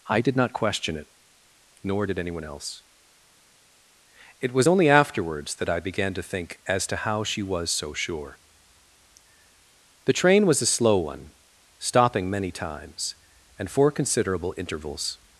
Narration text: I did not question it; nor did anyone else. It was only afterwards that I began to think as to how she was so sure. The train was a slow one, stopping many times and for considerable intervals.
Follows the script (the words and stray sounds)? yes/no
yes